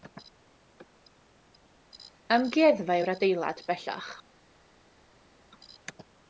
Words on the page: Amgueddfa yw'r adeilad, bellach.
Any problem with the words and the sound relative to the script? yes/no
no